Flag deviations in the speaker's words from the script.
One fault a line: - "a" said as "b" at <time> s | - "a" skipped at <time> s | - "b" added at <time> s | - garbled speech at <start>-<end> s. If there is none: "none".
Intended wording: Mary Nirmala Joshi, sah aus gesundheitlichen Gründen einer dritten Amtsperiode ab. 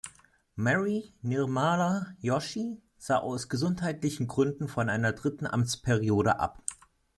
- "von" added at 4.7 s